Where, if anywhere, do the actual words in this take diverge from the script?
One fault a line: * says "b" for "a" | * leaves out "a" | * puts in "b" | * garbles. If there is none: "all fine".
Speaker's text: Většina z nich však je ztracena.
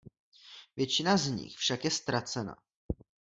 all fine